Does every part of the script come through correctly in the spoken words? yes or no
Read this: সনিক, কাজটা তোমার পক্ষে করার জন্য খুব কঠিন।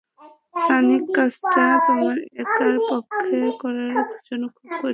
no